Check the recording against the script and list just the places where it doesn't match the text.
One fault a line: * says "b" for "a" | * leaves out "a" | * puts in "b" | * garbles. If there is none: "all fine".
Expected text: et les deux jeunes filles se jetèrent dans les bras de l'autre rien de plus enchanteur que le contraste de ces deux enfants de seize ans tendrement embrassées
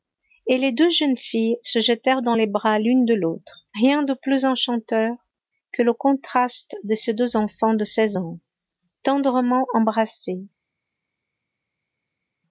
* puts in "l'une"